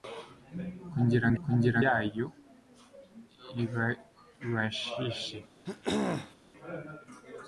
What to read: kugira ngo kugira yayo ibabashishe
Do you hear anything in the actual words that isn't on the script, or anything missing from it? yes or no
no